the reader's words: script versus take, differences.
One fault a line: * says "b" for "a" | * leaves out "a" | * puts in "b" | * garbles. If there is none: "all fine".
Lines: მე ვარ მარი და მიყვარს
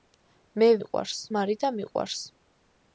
* says "მიყვარს" for "ვარ"